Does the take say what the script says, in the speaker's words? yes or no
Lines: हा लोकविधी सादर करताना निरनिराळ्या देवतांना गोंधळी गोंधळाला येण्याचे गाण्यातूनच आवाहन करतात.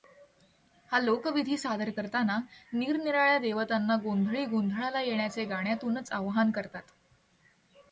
yes